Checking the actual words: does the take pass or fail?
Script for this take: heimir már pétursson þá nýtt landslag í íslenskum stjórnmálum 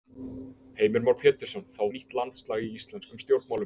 pass